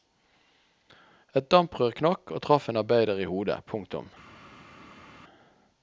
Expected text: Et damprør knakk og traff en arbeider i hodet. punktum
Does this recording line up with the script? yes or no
yes